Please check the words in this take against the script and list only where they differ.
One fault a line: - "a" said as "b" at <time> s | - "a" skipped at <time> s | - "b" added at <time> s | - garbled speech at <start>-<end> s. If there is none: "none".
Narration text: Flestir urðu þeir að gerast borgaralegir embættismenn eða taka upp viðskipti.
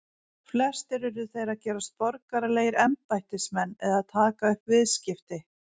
none